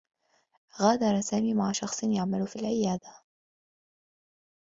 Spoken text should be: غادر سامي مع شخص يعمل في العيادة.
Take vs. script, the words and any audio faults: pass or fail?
pass